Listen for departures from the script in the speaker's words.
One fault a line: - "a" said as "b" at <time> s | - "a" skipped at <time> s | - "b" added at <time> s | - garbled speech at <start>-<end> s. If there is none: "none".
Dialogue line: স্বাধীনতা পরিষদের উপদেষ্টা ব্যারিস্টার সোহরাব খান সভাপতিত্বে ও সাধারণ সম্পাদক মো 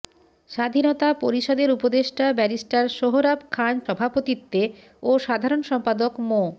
none